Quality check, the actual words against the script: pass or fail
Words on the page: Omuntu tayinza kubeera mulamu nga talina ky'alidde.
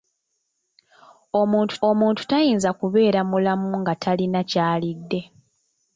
fail